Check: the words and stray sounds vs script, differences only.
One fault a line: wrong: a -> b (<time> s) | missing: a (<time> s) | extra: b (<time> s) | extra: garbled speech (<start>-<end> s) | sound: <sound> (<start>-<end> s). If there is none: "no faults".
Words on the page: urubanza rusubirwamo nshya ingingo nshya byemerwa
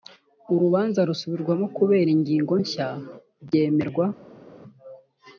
wrong: nshya -> kubera (1.8 s)